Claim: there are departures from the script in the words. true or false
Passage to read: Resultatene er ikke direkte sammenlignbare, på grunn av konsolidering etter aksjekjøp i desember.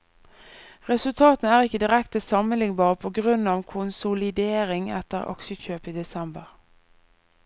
false